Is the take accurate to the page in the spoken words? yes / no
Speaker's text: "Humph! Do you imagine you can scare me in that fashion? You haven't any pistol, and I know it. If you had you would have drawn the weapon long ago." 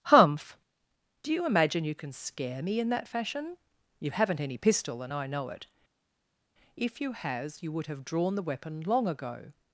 no